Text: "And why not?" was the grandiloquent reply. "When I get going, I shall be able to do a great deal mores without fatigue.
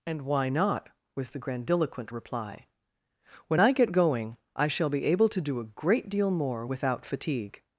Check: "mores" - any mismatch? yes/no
yes